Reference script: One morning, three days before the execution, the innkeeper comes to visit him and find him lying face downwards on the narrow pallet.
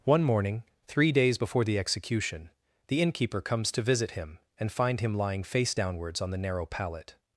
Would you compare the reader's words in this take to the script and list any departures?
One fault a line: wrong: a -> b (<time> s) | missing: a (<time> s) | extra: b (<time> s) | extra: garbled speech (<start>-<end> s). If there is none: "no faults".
no faults